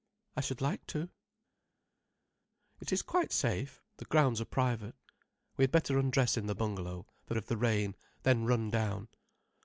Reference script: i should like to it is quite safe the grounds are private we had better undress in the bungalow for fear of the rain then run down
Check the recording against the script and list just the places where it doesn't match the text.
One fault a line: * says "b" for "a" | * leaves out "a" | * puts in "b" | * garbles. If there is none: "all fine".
* leaves out "fear"